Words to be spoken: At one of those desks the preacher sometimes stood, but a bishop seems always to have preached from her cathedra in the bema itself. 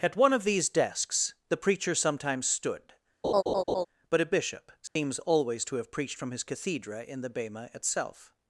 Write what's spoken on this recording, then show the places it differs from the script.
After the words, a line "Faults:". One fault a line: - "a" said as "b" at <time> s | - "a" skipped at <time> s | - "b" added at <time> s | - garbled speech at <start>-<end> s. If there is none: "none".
At one of these desks the preacher sometimes stood, but a bishop seems always to have preached from his cathedra in the bema itself.
Faults:
- "those" said as "these" at 0.5 s
- "her" said as "his" at 6.3 s